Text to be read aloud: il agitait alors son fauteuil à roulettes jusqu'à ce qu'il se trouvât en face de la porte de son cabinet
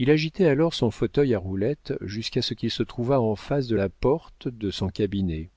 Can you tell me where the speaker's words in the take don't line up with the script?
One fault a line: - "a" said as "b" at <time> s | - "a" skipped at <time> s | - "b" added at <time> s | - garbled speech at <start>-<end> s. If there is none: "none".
none